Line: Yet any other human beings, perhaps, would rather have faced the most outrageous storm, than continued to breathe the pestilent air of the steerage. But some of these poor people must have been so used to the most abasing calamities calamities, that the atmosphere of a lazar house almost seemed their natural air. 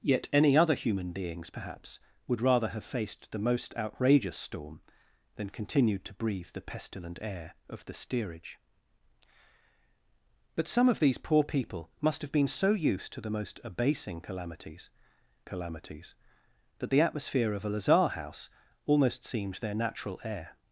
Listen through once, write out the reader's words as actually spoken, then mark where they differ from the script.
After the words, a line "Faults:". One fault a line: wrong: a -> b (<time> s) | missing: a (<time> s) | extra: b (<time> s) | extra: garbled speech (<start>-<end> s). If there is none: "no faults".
Yet any other human beings, perhaps, would rather have faced the most outrageous storm, than continued to breathe the pestilent air of the steerage. But some of these poor people must have been so used to the most abasing calamities calamities, that the atmosphere of a lazar house almost seemed their natural air.
Faults:
no faults